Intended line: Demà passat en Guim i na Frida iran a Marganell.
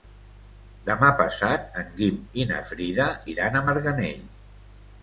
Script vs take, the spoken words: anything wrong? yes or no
no